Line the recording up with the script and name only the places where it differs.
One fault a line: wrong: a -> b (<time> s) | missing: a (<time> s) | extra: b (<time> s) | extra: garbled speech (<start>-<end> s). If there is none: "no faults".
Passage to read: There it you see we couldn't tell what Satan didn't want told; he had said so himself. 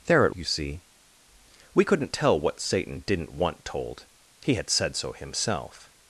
no faults